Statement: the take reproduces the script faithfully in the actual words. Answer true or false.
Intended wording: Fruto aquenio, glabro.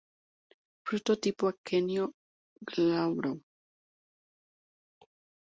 false